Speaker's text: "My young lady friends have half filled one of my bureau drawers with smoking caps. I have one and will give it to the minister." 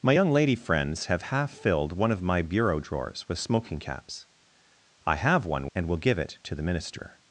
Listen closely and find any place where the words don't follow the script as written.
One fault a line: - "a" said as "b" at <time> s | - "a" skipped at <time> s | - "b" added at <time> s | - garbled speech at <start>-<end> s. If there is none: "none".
none